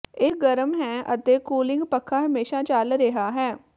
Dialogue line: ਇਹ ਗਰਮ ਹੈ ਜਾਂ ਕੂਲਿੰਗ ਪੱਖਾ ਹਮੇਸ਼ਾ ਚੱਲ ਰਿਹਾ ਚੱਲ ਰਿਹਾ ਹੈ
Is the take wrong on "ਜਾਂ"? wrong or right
wrong